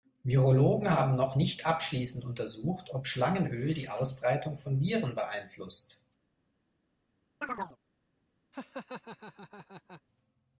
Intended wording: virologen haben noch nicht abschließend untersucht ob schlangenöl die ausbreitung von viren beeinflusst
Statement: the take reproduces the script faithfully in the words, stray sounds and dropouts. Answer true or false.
false